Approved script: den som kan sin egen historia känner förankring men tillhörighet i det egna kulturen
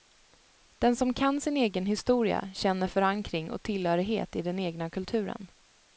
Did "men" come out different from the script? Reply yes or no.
yes